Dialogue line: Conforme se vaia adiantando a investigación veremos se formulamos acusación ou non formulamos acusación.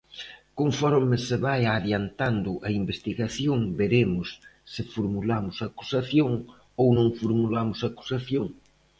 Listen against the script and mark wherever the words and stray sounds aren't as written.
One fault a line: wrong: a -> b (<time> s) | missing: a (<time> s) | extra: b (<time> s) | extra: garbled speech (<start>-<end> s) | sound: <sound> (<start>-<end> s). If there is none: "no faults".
no faults